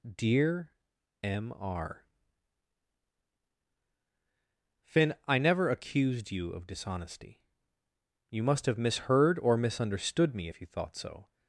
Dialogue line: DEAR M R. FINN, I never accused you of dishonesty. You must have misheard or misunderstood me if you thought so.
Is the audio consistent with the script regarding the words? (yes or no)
yes